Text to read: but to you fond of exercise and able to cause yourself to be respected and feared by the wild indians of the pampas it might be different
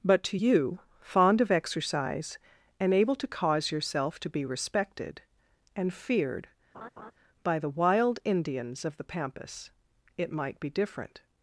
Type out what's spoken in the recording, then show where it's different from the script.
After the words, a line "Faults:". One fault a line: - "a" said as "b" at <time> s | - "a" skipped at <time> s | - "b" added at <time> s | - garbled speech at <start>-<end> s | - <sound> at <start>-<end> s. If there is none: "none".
but to you fond of exercise and able to cause yourself to be respected and feared by the wild indians of the pampas it might be different
Faults:
- laugh at 6.7-7.1 s